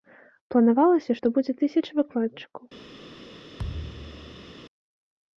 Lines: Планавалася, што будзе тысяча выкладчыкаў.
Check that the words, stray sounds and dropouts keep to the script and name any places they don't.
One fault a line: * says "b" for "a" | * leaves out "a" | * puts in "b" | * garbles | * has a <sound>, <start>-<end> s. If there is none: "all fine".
* has a thud, 3.6-4.5 s